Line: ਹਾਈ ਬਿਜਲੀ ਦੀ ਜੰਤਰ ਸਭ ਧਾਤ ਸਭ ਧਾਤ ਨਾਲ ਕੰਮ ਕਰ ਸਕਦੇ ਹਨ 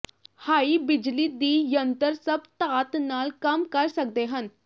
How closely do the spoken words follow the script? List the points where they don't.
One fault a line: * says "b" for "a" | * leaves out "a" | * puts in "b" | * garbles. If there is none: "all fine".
* leaves out "ਸਭ ਧਾਤ"